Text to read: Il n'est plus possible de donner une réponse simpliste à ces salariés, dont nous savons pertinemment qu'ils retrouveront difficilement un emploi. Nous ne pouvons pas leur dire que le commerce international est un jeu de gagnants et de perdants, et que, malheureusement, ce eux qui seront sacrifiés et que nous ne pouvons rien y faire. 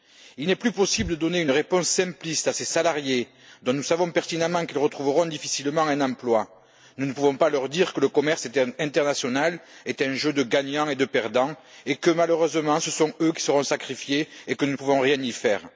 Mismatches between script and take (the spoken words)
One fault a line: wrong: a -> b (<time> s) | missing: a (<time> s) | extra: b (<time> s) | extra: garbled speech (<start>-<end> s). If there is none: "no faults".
extra: sont (12.9 s)